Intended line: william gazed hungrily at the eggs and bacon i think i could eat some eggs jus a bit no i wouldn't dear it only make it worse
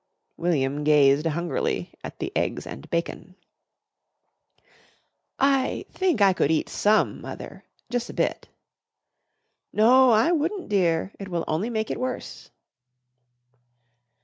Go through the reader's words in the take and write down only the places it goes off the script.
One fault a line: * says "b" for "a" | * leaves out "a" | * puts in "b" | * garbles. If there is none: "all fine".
* says "mother" for "eggs"
* puts in "will"